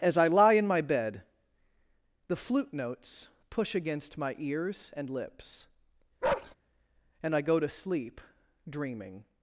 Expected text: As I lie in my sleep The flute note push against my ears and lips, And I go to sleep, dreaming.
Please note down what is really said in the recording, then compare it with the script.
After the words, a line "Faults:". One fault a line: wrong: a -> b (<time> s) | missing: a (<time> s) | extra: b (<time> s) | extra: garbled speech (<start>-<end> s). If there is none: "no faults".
As I lie in my bed The flute notes push against my ears and lips, And I go to sleep, dreaming.
Faults:
wrong: sleep -> bed (0.8 s)
wrong: note -> notes (2.7 s)